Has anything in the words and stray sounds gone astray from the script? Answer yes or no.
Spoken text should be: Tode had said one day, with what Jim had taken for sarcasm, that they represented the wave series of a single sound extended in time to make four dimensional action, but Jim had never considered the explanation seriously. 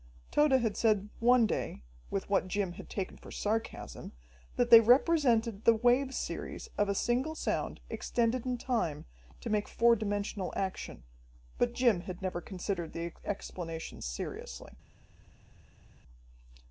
no